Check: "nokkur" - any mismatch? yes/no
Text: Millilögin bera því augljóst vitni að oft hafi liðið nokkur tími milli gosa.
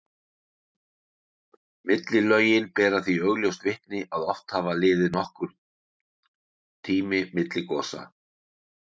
no